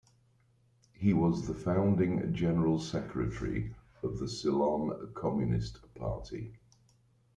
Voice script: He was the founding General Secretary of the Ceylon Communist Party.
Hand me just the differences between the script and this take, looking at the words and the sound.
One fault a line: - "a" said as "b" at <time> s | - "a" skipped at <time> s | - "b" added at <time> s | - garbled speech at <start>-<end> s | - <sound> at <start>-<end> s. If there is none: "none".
none